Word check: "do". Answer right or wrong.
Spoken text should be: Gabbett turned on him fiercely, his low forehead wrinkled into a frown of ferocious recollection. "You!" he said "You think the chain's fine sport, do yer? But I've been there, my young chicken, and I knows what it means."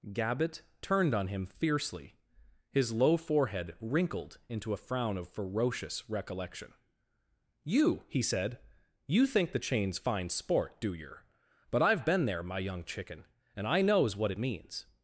right